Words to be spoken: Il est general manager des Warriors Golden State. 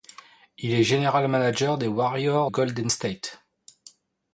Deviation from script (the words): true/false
false